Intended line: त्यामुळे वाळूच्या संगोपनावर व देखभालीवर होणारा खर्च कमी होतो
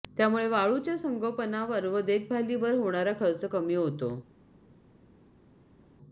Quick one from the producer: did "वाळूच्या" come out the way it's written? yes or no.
yes